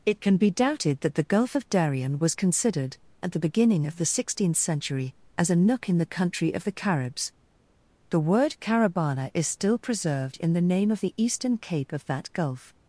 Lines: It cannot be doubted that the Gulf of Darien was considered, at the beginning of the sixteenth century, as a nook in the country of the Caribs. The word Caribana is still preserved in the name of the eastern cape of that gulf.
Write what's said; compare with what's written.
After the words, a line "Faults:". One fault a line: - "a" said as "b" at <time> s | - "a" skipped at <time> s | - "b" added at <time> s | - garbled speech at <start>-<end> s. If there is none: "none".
It can be doubted that the Gulf of Darien was considered, at the beginning of the sixteenth century, as a nook in the country of the Caribs. The word Caribana is still preserved in the name of the eastern cape of that gulf.
Faults:
- "cannot" said as "can" at 0.2 s